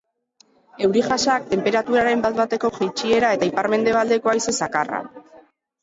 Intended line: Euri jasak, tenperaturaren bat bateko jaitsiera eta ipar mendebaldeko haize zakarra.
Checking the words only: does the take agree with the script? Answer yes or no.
yes